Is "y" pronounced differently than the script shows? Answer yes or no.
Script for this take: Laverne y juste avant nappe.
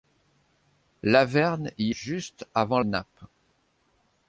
no